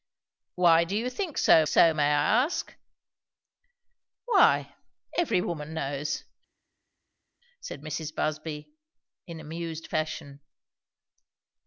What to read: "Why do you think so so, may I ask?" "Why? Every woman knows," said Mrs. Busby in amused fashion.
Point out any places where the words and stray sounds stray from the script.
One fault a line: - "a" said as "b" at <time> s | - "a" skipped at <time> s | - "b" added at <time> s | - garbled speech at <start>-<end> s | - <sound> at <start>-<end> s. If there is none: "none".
none